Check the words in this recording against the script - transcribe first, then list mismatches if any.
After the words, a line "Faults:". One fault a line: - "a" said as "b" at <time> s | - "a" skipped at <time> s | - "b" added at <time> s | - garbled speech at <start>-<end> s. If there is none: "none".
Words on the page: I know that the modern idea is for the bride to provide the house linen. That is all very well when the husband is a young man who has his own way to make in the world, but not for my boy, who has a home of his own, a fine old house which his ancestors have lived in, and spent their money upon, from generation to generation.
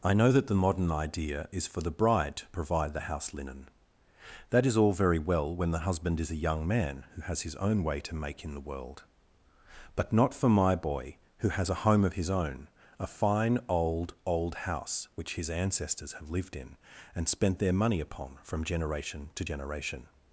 I know that the modern idea is for the bride to provide the house linen. That is all very well when the husband is a young man who has his own way to make in the world, but not for my boy, who has a home of his own, a fine old old house which his ancestors have lived in, and spent their money upon, from generation to generation.
Faults:
- "old" added at 14.2 s